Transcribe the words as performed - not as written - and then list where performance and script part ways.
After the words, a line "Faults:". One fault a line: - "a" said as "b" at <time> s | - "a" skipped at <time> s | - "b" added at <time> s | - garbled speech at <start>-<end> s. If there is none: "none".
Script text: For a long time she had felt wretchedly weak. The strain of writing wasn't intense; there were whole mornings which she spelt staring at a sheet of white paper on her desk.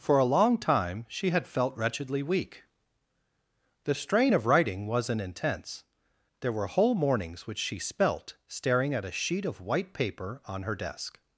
For a long time she had felt wretchedly weak. The strain of writing wasn't intense; there were whole mornings which she spelt staring at a sheet of white paper on her desk.
Faults:
none